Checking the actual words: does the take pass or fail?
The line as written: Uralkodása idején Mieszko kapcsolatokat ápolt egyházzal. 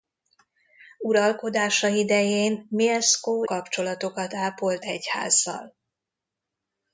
pass